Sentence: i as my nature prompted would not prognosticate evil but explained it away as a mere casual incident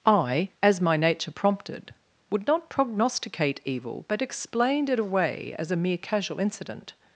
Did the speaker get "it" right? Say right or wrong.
right